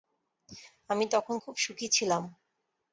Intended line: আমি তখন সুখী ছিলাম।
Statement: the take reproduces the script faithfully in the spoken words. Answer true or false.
false